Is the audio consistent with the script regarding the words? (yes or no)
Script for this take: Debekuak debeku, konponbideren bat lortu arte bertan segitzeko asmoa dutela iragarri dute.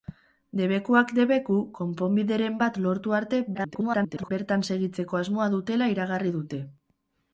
no